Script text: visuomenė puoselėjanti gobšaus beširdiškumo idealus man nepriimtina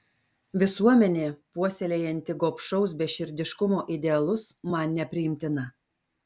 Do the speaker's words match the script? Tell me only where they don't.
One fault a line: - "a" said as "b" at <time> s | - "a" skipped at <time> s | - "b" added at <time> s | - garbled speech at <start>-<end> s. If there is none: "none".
none